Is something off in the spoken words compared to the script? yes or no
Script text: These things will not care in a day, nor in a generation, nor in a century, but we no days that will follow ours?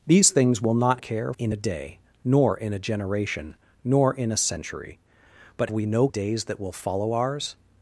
no